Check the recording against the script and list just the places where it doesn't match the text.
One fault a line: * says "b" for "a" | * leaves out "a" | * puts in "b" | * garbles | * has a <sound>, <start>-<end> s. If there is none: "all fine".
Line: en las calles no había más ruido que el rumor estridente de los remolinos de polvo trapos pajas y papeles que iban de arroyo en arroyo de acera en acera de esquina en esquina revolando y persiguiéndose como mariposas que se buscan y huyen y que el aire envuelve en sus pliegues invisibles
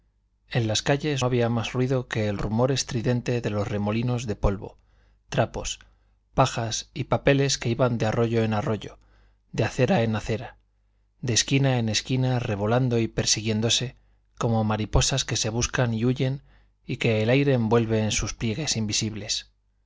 * leaves out "no"